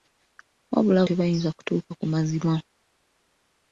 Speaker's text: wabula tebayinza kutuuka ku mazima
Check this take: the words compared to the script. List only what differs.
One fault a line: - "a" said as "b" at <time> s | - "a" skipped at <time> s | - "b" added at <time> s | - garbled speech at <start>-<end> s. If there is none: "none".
none